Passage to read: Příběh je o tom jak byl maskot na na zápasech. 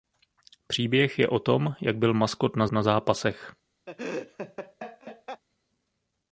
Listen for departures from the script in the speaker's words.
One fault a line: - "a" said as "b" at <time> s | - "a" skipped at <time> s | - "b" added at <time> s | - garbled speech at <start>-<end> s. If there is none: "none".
none